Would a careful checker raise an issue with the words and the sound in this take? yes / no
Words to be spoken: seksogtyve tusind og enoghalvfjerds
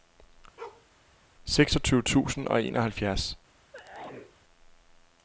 yes